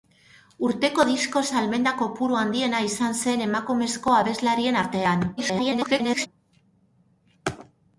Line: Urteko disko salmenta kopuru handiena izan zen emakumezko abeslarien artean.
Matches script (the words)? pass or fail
fail